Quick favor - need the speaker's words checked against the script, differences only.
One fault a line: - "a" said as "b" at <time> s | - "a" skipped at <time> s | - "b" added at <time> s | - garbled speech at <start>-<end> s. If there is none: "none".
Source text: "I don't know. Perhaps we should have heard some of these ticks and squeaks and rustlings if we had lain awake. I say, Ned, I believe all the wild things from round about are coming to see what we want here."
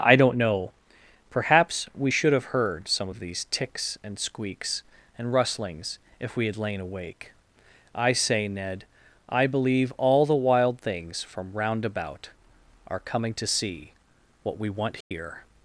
none